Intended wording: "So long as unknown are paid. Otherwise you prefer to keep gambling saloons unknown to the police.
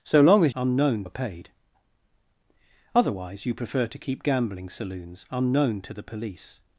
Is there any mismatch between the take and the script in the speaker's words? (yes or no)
no